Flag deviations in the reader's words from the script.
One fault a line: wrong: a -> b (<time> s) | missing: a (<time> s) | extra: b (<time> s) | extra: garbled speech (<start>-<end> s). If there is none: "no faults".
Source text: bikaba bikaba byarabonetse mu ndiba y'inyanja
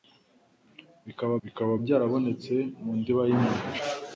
no faults